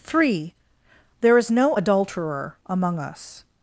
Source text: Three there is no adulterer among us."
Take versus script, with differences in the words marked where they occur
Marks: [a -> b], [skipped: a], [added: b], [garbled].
Three there is no adulterer among us."